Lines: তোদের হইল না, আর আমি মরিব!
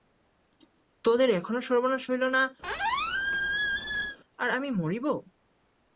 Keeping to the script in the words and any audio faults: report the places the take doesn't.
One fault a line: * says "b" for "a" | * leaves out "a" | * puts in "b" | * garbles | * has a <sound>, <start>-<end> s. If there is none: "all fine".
* puts in "এখনও সর্বনাশ"
* has a squeak, 2.6-4.2 s